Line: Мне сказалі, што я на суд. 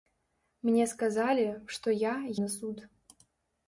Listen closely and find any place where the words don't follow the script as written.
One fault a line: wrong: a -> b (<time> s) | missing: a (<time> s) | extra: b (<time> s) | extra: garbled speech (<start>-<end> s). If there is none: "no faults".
no faults